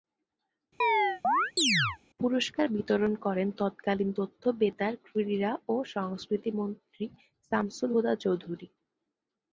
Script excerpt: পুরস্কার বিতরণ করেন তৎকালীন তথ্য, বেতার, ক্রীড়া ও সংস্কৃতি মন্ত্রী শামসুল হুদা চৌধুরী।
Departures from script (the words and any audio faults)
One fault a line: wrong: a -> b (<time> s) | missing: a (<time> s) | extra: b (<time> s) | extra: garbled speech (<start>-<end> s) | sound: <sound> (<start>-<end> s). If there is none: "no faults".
sound: chirp (0.8-2.0 s)